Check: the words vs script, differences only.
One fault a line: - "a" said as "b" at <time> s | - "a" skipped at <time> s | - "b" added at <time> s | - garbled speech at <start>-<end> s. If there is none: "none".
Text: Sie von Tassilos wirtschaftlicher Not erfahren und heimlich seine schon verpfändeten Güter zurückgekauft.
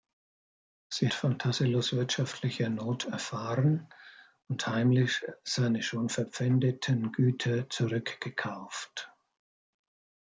none